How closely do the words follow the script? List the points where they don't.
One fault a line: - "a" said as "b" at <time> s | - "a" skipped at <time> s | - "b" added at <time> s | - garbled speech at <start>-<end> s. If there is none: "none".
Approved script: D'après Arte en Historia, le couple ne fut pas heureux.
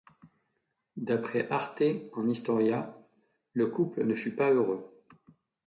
none